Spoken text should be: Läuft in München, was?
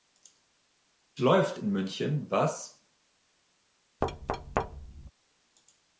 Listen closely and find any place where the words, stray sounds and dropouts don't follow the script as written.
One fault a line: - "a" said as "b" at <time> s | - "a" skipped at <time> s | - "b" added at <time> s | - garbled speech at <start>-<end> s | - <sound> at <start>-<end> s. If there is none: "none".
- thud at 4.0-5.1 s